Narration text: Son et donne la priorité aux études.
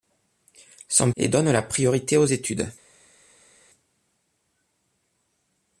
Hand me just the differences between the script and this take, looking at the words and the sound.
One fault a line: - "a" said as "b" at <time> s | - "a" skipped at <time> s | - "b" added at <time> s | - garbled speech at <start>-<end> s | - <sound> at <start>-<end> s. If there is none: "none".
none